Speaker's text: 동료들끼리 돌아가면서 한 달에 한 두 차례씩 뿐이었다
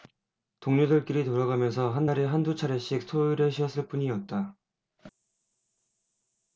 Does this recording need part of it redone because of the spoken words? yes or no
yes